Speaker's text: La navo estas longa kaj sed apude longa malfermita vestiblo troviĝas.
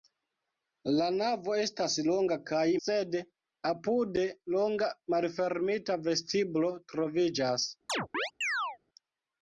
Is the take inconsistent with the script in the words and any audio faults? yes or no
yes